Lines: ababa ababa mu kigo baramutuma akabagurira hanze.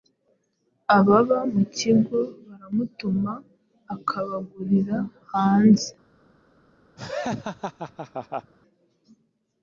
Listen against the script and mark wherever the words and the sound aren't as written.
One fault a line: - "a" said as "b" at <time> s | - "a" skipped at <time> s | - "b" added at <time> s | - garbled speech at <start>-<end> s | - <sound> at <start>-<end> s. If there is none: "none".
- "ababa" skipped at 1.4 s
- laugh at 7.0-8.5 s